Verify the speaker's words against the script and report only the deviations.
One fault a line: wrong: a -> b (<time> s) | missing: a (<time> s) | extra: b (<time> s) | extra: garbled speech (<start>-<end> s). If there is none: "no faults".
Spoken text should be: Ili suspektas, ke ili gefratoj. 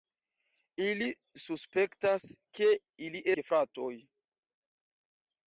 no faults